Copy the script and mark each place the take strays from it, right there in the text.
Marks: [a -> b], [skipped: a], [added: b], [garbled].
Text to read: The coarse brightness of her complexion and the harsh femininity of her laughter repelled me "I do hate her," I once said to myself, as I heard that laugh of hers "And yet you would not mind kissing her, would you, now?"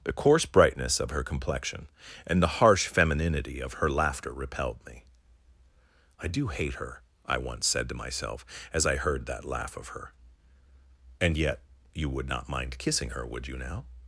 The coarse brightness of her complexion and the harsh femininity of her laughter repelled me "I do hate her," I once said to myself, as I heard that laugh of [hers -> her] "And yet you would not mind kissing her, would you, now?"